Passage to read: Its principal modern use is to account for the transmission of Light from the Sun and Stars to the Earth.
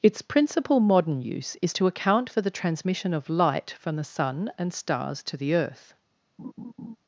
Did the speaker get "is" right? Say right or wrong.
right